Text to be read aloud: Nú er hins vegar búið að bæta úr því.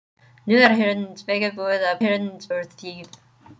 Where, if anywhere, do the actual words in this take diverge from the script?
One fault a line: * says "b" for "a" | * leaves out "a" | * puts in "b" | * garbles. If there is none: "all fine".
* says "hins" for "bæta"